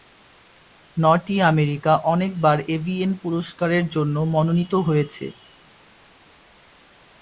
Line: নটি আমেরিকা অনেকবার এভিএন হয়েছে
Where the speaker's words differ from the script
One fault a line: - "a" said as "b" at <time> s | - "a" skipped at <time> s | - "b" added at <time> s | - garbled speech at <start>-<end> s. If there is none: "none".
- "পুরস্কারের জন্য মনোনীত" added at 3.2 s